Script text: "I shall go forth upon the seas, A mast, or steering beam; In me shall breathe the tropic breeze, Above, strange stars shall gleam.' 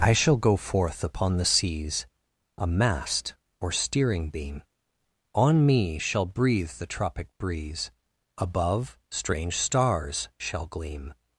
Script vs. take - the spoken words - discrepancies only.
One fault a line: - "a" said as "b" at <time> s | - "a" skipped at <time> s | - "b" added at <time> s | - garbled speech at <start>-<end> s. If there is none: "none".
- "In" said as "On" at 5.3 s